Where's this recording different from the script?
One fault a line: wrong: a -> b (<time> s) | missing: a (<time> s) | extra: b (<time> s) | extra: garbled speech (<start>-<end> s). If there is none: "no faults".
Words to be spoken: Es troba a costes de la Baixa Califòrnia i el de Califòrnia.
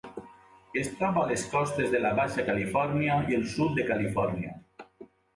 extra: les (1.3 s)
extra: sud (3.5 s)